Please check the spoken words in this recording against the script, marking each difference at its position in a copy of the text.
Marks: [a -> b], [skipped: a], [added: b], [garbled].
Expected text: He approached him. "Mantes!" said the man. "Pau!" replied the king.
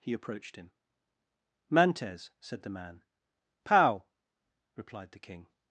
He approached him. "Mantes!" said the man. "Pau!" replied the king.